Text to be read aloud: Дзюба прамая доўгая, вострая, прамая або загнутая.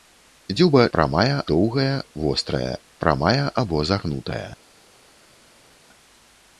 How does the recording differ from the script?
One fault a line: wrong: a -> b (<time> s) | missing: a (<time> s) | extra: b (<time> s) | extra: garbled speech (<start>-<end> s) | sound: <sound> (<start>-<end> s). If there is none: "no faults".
no faults